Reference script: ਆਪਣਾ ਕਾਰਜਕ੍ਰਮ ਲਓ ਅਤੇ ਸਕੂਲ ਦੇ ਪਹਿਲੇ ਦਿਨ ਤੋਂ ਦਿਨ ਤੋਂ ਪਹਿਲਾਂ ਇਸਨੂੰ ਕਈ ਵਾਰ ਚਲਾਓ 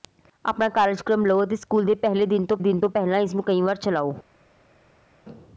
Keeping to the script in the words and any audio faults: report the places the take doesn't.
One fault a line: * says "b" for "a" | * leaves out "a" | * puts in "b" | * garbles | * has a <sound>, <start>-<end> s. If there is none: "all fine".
all fine